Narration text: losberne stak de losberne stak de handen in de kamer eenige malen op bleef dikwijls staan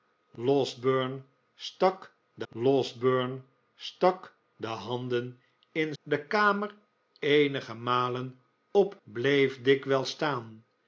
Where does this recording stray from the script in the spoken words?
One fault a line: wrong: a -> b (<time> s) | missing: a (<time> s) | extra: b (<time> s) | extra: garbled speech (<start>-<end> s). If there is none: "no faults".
no faults